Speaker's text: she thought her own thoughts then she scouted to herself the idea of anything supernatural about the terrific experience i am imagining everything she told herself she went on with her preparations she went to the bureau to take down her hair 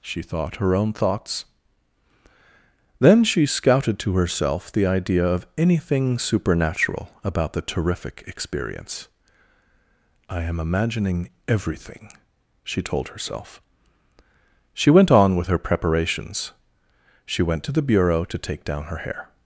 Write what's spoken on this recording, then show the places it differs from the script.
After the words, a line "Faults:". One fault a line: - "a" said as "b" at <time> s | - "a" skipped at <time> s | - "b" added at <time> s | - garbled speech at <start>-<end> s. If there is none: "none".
she thought her own thoughts then she scouted to herself the idea of anything supernatural about the terrific experience i am imagining everything she told herself she went on with her preparations she went to the bureau to take down her hair
Faults:
none